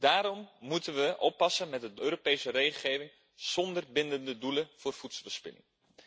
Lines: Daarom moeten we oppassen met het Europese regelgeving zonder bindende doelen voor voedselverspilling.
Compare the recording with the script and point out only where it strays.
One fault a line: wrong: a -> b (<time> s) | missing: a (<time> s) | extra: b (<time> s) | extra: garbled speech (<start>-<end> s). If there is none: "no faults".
no faults